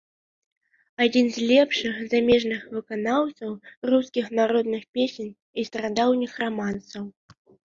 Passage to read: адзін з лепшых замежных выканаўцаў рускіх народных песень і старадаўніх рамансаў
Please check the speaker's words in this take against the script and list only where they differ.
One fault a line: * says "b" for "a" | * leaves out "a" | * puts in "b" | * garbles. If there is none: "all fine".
all fine